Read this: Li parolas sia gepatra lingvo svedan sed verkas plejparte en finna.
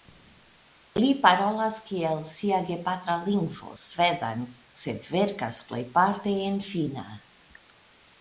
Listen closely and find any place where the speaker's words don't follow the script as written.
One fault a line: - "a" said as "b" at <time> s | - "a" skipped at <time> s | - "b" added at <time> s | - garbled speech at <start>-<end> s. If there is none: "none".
- "kiel" added at 1.9 s